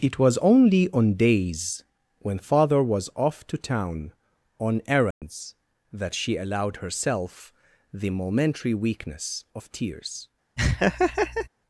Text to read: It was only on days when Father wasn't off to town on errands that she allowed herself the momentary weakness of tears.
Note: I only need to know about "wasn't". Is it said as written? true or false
false